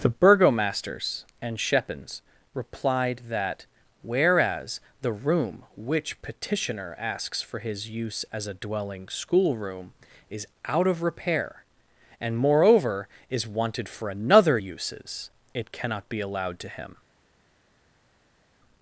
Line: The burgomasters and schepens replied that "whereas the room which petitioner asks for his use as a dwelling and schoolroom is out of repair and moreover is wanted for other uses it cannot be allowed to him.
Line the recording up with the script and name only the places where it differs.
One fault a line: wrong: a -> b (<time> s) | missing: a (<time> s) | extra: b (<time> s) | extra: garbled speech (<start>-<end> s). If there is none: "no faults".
missing: and (9.1 s)
wrong: other -> another (14.1 s)